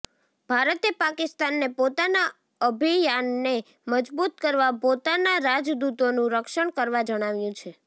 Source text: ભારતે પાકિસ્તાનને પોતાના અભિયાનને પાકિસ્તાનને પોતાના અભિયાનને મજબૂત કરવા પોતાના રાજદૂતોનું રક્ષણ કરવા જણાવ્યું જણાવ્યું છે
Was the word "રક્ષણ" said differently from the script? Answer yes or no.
no